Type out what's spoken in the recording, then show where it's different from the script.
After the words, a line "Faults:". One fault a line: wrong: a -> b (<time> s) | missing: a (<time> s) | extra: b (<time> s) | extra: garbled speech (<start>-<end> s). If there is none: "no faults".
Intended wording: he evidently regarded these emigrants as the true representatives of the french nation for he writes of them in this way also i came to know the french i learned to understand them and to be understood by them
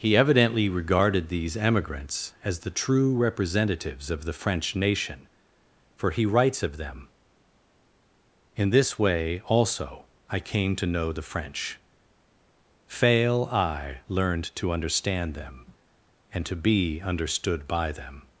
he evidently regarded these emigrants as the true representatives of the french nation for he writes of them in this way also i came to know the french fail i learned to understand them and to be understood by them
Faults:
extra: fail (12.9 s)